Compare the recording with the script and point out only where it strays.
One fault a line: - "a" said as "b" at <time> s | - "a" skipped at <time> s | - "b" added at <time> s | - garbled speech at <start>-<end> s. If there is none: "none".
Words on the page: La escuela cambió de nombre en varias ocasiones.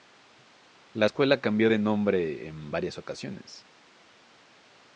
none